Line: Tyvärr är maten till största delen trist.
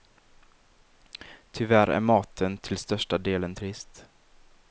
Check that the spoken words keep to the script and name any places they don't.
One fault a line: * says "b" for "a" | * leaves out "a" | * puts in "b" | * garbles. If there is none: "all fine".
all fine